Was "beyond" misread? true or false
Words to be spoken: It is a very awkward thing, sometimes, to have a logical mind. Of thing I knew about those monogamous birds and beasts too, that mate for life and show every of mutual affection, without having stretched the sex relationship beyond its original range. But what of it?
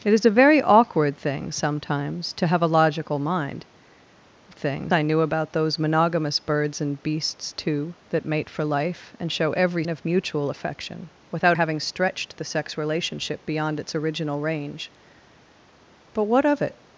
false